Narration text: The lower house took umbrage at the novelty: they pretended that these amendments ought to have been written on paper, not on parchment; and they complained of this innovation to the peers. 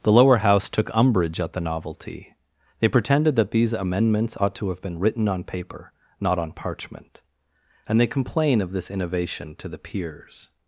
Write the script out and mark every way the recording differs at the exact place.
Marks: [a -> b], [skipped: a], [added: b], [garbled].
The lower house took umbrage at the novelty: they pretended that these amendments ought to have been written on paper, not on parchment; and they [complained -> complain] of this innovation to the peers.